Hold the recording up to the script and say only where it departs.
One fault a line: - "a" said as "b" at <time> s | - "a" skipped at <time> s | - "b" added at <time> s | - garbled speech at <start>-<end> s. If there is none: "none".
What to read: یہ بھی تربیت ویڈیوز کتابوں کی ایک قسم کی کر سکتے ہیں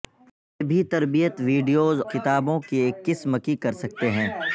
none